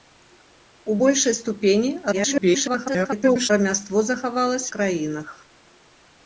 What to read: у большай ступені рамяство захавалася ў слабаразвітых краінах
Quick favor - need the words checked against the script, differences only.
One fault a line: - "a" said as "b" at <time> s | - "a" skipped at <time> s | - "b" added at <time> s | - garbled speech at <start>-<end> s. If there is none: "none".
- garbled speech at 2.1-3.5 s
- "ў слабаразвітых" skipped at 4.7 s